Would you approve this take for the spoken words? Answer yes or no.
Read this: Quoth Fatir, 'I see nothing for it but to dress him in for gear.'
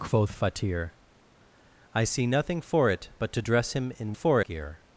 yes